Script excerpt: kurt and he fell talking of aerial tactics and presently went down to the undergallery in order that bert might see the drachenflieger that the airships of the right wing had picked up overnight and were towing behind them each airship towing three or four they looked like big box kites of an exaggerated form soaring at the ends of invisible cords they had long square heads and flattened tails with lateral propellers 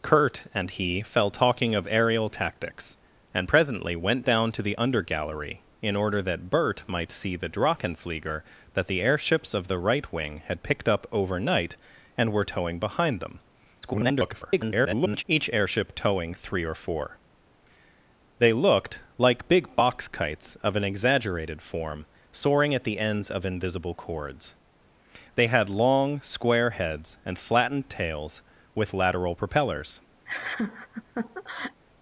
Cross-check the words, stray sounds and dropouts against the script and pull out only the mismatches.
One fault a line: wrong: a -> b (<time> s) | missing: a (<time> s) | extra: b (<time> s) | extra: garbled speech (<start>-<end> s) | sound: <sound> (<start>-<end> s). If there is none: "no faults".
extra: garbled speech (13.8-15.2 s)
sound: laugh (30.3-31.8 s)